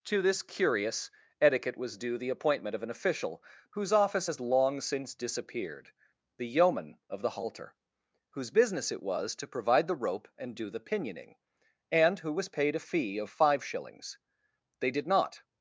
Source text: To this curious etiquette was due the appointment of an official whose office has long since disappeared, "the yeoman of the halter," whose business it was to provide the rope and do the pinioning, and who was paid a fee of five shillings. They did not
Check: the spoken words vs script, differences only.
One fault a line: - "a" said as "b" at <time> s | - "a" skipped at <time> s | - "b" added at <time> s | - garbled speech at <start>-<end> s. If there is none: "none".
none